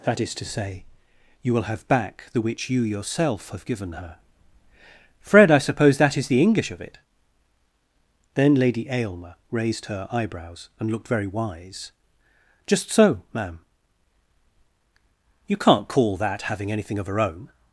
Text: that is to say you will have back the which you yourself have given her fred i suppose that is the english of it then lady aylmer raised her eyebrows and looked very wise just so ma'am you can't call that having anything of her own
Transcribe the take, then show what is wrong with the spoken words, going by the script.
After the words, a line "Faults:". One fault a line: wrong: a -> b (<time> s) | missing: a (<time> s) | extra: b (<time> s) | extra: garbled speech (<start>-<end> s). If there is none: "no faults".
that is to say you will have back the which you yourself have given her fred i suppose that is the english of it then lady aylmer raised her eyebrows and looked very wise just so ma'am you can't call that having anything of her own
Faults:
no faults